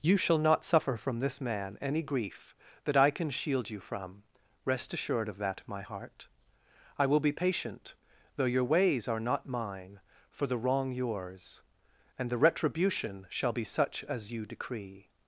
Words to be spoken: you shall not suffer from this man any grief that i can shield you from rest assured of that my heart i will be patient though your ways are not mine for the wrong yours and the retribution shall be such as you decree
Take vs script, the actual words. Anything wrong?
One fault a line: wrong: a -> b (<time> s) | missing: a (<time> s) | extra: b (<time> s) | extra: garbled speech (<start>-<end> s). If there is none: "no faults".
no faults